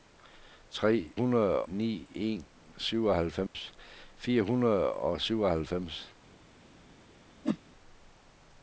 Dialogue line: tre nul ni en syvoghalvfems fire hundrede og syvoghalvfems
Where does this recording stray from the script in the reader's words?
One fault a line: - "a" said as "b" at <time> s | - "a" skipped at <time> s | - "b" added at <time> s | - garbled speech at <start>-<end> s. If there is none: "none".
- "nul" said as "hundrede" at 1.1 s